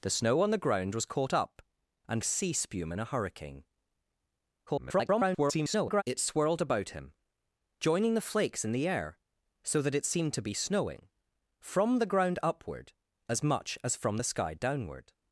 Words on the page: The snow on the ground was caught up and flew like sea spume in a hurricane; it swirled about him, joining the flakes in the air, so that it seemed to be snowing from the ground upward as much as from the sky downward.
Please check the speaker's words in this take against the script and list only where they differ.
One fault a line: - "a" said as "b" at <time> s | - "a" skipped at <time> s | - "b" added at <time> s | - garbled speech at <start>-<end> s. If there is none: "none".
- "flew like" skipped at 2.2 s
- garbled speech at 4.7-6.0 s